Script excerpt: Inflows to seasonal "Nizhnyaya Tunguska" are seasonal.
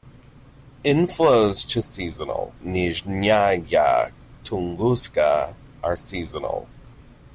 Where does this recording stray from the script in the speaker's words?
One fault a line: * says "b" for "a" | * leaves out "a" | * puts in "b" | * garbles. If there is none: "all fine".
all fine